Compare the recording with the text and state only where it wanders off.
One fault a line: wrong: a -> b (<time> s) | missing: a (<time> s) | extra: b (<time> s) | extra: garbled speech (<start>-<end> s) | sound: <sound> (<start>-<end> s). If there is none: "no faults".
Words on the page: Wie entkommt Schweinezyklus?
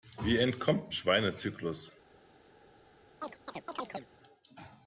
sound: chirp (3.2-4.1 s)